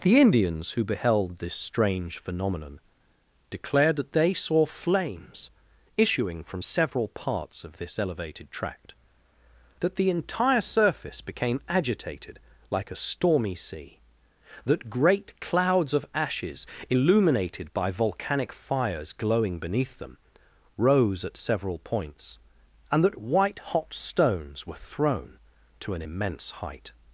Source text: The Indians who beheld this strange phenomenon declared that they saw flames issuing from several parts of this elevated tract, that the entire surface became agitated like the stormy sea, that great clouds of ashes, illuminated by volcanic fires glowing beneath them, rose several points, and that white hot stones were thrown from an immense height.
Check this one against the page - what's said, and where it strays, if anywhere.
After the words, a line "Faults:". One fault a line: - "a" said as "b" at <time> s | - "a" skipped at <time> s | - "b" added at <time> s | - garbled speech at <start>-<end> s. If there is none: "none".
The Indians who beheld this strange phenomenon declared that they saw flames issuing from several parts of this elevated tract, that the entire surface became agitated like a stormy sea, that great clouds of ashes, illuminated by volcanic fires glowing beneath them, rose at several points, and that white hot stones were thrown to an immense height.
Faults:
- "the" said as "a" at 12.9 s
- "at" added at 21.2 s
- "from" said as "to" at 25.8 s